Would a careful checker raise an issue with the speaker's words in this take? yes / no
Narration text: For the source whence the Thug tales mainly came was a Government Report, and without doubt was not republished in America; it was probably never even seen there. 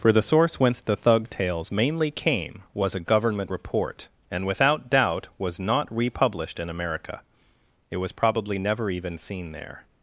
no